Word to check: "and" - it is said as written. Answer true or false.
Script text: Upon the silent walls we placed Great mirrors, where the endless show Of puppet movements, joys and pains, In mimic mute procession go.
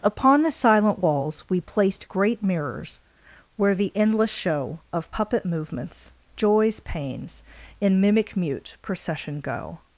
false